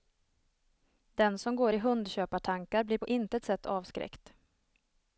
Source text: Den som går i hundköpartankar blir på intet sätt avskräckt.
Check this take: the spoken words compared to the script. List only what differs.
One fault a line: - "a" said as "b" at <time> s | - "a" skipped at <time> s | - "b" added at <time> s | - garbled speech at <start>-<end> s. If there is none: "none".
none